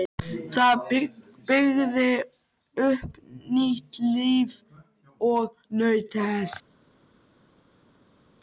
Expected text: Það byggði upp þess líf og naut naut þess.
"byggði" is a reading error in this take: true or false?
false